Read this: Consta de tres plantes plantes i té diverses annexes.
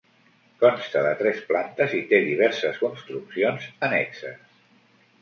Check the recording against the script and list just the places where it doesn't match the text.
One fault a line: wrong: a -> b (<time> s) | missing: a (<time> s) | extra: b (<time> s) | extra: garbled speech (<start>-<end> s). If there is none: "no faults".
missing: plantes (1.9 s)
extra: construccions (2.8 s)